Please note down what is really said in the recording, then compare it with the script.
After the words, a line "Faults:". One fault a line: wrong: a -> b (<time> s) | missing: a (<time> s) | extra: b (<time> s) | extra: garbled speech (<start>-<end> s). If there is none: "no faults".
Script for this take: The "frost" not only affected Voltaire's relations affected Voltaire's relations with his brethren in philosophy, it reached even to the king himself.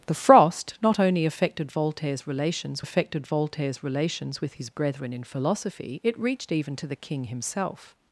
The "frost" not only affected Voltaire's relations affected Voltaire's relations with his brethren in philosophy, it reached even to the king himself.
Faults:
no faults